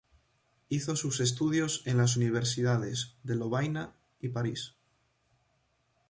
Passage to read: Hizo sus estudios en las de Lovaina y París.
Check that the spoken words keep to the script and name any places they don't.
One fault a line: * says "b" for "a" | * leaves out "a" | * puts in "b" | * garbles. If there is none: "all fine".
* puts in "universidades"